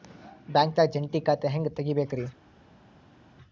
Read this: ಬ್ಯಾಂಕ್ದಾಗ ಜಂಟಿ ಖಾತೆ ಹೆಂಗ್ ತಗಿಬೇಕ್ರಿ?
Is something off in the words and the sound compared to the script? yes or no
no